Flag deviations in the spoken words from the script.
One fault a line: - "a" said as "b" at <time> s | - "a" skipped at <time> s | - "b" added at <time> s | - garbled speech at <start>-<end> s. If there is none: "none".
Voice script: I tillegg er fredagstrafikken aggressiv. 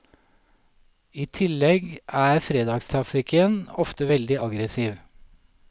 - "ofte veldig" added at 3.9 s